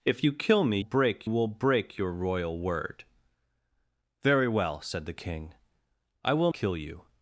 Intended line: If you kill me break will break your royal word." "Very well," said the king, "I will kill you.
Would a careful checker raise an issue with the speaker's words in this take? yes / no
no